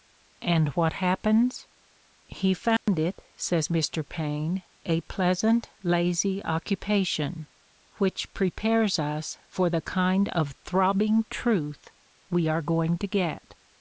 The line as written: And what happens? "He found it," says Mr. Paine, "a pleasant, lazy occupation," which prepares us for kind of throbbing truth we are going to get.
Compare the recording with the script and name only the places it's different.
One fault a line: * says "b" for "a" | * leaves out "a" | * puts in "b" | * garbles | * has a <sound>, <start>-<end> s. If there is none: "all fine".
* has a dropout, 2.8-2.9 s
* puts in "the"